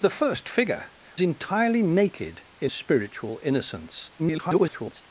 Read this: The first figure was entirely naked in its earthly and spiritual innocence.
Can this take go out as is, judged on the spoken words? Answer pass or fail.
fail